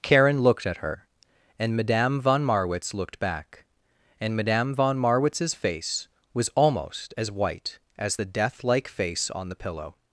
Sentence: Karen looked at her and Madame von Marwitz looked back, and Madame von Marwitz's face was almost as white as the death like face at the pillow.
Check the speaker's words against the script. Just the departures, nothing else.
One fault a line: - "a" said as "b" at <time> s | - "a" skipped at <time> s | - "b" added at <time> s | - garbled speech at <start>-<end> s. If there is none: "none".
- "at" said as "on" at 9.3 s